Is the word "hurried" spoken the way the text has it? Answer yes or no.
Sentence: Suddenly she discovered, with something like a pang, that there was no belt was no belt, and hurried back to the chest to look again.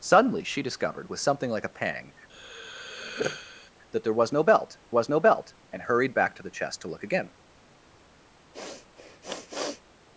yes